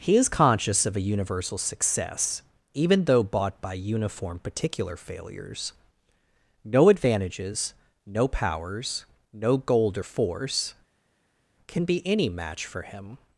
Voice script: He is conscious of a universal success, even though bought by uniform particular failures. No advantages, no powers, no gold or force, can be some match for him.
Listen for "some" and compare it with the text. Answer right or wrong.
wrong